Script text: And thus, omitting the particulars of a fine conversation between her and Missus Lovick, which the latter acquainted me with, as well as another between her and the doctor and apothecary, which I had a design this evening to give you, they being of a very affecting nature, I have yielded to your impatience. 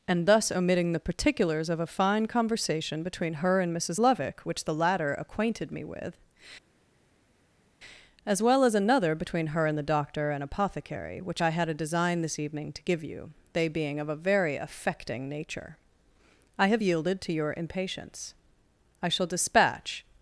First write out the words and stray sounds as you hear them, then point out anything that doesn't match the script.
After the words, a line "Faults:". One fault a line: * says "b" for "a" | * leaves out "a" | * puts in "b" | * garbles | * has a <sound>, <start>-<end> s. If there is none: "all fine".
And thus, omitting the particulars of a fine conversation between her and Missus Lovick, which the latter acquainted me with, as well as another between her and the doctor and apothecary, which I had a design this evening to give you, they being of a very affecting nature, I have yielded to your impatience. I shall dispatch
Faults:
* puts in "I shall dispatch"